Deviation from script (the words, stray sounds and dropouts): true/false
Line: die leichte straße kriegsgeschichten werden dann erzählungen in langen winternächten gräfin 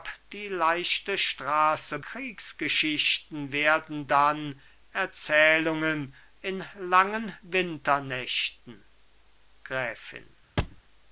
true